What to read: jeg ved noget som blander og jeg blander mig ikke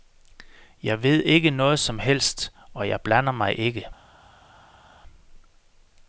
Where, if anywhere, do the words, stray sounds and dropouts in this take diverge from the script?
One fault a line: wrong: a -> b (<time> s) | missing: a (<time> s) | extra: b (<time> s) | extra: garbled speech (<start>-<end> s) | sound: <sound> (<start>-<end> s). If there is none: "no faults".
extra: ikke (1.2 s)
wrong: blander -> helst (2.0 s)